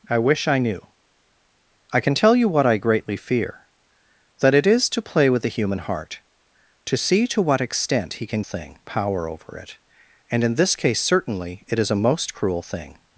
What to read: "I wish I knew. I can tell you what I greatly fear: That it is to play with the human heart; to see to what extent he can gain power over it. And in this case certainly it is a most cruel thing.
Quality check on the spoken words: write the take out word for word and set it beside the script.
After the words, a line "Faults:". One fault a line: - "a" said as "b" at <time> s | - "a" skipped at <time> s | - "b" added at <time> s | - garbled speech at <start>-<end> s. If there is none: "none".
"I wish I knew. I can tell you what I greatly fear: That it is to play with the human heart; to see to what extent he can thing power over it. And in this case certainly it is a most cruel thing.
Faults:
- "gain" said as "thing" at 8.4 s